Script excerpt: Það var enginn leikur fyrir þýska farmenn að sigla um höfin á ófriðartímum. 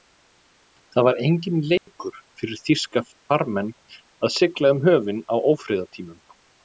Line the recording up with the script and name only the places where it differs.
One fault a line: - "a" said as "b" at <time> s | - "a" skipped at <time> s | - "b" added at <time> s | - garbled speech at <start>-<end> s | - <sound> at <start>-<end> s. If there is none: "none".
- dropout at 1.8-1.9 s